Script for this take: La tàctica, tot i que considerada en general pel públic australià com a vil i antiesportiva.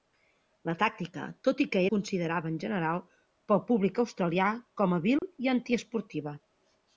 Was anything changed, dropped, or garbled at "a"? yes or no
no